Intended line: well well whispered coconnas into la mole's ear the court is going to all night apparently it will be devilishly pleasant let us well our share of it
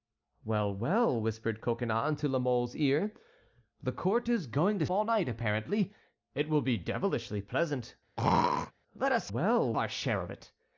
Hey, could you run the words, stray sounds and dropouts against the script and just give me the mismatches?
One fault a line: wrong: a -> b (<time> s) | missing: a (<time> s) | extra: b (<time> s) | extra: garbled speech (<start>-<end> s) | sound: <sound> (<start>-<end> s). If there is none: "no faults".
sound: throat clearing (8.2-8.7 s)